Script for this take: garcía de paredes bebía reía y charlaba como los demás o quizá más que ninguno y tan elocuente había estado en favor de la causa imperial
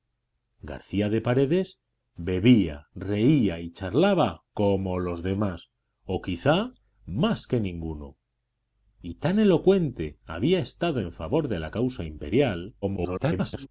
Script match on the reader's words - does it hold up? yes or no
no